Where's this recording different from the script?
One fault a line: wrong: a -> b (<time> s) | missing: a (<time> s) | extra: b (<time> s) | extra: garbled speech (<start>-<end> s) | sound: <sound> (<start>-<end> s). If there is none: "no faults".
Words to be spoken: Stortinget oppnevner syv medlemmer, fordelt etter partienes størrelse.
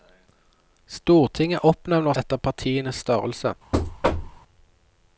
missing: syv medlemmer fordelt (2.1 s)
sound: thud (3.7-4.4 s)